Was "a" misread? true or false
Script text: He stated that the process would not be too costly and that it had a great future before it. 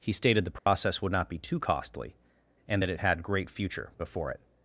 true